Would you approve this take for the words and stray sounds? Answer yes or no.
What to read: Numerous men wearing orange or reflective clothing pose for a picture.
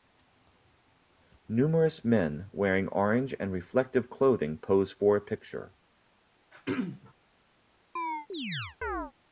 no